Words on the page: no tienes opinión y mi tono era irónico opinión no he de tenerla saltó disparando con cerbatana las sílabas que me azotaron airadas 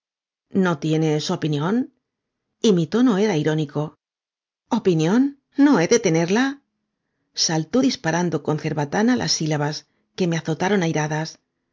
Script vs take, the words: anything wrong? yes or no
no